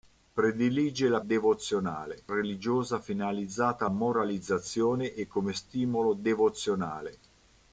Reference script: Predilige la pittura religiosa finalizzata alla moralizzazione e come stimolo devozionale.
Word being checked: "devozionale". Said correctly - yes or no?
yes